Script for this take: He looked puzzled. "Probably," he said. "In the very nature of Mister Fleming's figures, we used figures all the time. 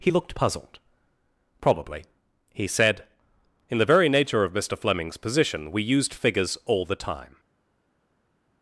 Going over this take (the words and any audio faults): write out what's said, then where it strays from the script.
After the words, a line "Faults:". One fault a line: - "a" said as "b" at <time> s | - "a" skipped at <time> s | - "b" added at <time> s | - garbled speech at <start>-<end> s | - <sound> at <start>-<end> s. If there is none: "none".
He looked puzzled. "Probably," he said. "In the very nature of Mister Fleming's position, we used figures all the time.
Faults:
- "figures" said as "position" at 5.2 s